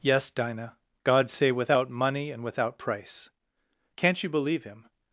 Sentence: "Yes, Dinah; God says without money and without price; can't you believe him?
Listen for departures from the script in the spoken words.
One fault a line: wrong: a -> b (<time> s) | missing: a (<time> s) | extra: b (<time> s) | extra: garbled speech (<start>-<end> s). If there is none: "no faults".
wrong: says -> say (1.3 s)